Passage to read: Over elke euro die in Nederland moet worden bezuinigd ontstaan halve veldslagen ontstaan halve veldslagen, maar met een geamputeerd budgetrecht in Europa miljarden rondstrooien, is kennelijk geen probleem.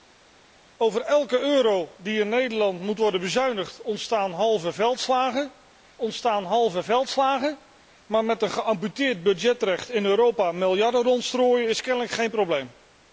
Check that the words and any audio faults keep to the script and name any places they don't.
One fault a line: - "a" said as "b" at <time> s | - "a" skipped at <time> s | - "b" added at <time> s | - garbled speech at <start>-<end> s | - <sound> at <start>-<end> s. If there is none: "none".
none